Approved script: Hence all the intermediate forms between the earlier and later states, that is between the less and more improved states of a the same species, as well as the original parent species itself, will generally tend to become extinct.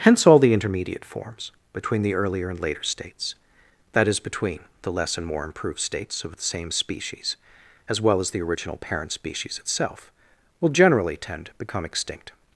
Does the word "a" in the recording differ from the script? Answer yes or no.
yes